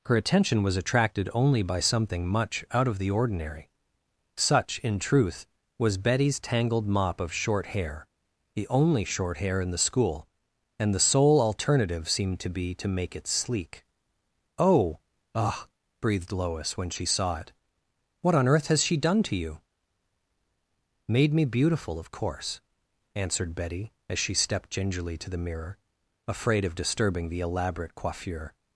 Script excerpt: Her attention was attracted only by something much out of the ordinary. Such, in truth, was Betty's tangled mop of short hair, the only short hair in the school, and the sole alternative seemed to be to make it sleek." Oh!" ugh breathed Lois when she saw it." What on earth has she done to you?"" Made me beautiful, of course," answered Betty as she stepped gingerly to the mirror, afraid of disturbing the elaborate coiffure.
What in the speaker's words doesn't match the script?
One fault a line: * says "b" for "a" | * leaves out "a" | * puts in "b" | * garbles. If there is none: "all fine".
all fine